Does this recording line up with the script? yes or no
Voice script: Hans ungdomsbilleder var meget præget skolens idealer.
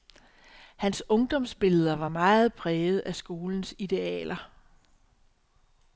no